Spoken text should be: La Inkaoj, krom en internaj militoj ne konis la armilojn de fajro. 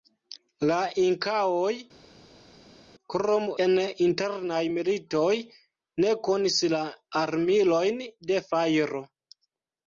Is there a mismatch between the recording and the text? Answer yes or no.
no